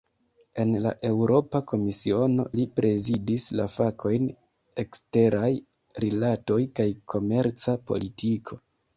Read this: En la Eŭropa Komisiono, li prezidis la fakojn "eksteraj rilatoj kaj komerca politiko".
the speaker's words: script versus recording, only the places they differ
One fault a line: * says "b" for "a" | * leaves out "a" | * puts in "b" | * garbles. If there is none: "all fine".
all fine